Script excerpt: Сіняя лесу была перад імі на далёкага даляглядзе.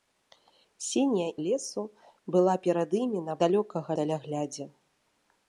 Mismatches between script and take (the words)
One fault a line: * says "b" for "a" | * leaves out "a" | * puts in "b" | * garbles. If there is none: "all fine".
all fine